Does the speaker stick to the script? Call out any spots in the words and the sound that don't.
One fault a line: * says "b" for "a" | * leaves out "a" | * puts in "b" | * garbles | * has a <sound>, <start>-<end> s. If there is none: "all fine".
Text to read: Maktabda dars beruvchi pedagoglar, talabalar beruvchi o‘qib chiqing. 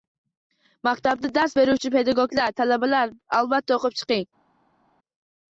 * says "albatta" for "beruvchi"